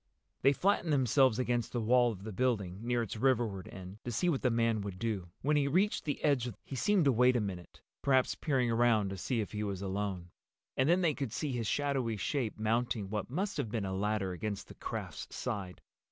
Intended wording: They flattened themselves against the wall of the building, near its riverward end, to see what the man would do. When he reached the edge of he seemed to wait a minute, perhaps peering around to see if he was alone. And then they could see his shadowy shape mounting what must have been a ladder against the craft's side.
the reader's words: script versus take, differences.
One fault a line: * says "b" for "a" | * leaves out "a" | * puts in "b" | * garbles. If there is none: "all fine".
all fine